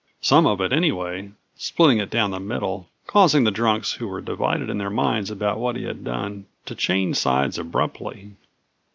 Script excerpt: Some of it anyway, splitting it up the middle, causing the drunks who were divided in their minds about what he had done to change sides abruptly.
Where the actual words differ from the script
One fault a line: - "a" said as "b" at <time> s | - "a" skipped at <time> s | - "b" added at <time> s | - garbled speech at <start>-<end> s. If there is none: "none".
- "up" said as "down" at 2.1 s